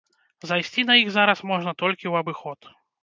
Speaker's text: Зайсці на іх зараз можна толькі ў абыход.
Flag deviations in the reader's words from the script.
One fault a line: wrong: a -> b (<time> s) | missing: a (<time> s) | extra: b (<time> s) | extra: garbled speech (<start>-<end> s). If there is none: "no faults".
no faults